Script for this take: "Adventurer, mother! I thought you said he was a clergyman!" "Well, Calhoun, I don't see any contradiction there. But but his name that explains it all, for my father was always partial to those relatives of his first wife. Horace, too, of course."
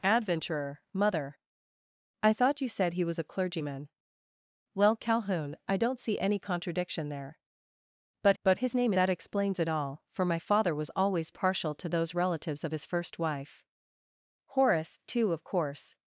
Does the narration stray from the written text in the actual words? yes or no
no